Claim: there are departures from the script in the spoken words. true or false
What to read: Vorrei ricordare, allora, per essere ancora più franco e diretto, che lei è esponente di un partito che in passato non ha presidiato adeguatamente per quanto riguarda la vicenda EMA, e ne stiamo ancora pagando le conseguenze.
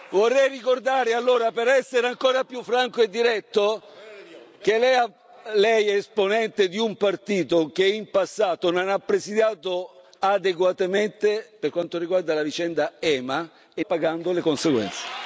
true